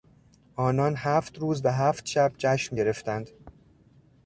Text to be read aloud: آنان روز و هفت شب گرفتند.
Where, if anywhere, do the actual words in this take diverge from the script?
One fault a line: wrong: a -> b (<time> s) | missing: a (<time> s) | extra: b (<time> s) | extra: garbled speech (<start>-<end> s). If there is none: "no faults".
extra: هفت (1.0 s)
extra: جشن (2.4 s)